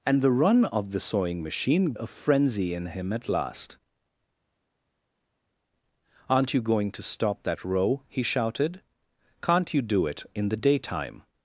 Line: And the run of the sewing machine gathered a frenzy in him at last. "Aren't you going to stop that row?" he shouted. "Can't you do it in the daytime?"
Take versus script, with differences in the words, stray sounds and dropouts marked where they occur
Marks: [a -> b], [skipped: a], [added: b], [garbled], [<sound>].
And the run of the sewing machine [skipped: gathered] a frenzy in him at last. "Aren't you going to stop that row?" he shouted. "Can't you do it in the daytime?"